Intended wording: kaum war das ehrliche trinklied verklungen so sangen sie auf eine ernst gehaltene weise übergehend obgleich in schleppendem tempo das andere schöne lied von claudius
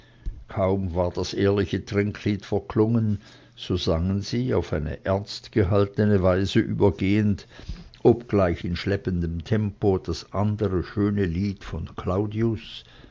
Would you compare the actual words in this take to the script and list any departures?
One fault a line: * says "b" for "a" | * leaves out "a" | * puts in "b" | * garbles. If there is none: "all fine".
all fine